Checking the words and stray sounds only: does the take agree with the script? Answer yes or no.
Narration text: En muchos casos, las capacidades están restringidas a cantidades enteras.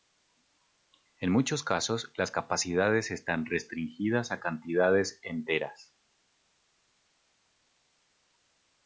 yes